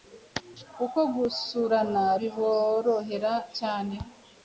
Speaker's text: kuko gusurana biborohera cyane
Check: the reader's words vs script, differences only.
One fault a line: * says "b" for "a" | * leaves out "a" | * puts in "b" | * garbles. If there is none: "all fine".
all fine